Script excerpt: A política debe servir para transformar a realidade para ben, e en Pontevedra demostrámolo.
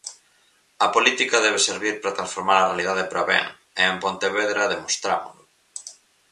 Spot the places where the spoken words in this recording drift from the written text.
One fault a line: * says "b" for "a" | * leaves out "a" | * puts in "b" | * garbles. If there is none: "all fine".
all fine